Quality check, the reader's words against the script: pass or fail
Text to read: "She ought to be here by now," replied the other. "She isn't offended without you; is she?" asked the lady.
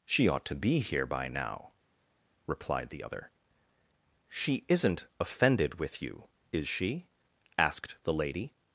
fail